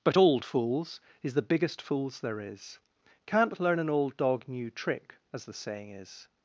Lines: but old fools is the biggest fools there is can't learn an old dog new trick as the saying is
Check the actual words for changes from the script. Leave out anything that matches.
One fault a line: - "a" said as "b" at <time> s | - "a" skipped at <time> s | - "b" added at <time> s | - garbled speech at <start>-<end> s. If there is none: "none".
none